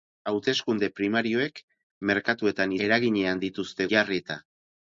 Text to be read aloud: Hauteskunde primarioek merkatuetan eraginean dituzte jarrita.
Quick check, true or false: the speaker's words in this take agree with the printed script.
true